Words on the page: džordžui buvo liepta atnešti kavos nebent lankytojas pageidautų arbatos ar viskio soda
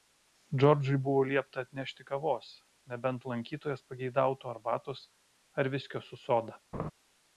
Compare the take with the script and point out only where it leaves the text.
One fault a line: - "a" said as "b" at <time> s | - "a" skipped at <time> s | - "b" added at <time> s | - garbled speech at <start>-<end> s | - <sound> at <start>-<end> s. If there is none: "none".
- "su" added at 6.1 s
- laugh at 6.7-6.9 s